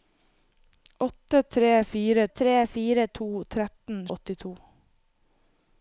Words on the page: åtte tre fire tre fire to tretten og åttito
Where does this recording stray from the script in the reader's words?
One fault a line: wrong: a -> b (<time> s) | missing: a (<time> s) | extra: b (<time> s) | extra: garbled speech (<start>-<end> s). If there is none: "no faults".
no faults